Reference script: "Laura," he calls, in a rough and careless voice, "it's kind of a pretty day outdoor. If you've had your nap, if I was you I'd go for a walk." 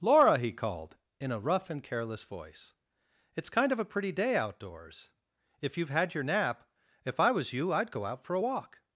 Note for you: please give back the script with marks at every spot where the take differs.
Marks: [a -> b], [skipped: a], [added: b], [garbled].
"Laura," he [calls, -> called] in a rough and careless voice, "it's kind of a pretty day [outdoor. -> outdoors] If you've had your nap, if I was you I'd go [added: out] for a walk."